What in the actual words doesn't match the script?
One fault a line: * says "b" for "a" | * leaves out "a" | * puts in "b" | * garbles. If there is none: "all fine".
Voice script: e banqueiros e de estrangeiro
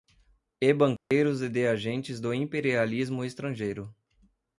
* puts in "agentes do imperialismo"